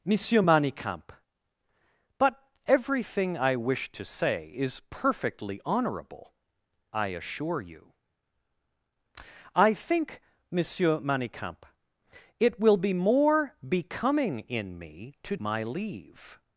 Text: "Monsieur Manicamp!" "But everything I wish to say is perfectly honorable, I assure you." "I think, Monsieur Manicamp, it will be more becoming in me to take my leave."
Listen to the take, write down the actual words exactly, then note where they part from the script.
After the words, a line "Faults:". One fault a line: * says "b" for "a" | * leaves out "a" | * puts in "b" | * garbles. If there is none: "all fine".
"Monsieur Manicamp!" "But everything I wish to say is perfectly honorable, I assure you." "I think, Monsieur Manicamp, it will be more becoming in me to my leave."
Faults:
* leaves out "take"